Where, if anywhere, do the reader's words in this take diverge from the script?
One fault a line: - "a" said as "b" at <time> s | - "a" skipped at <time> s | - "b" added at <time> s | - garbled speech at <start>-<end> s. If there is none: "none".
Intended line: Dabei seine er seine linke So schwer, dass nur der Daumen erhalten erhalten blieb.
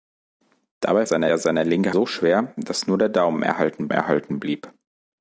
none